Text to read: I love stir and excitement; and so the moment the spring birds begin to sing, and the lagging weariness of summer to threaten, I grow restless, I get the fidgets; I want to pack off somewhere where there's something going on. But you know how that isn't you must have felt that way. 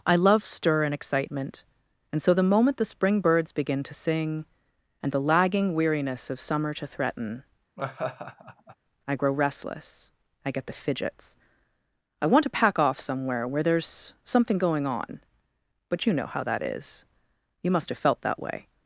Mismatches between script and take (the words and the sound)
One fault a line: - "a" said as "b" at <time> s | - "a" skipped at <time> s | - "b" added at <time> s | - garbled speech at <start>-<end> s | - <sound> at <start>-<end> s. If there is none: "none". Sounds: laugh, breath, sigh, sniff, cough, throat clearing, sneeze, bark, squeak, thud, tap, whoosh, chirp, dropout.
- laugh at 7.8-8.8 s
- "isn't" said as "is" at 16.6 s